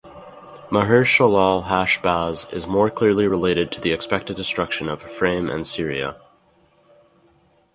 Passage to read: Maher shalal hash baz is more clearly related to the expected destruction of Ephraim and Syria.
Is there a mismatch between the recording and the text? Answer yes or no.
no